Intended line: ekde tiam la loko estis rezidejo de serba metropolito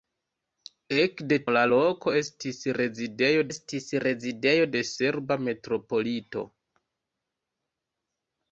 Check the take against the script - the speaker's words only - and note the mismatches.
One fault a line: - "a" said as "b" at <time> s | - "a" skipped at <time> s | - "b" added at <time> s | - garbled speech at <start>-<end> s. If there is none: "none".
- "tiam" skipped at 1.4 s
- "estis rezidejo" added at 3.5 s